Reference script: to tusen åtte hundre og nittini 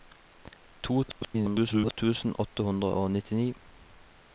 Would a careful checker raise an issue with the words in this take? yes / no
yes